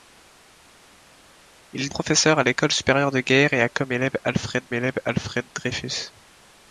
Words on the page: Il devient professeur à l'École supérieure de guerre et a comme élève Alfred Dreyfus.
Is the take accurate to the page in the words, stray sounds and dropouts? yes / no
no